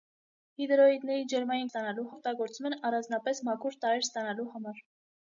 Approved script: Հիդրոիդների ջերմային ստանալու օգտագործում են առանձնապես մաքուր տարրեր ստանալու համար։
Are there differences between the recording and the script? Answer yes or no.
no